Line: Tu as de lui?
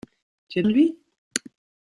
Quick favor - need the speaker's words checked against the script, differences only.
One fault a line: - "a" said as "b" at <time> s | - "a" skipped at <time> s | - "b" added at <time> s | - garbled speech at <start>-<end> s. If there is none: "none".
none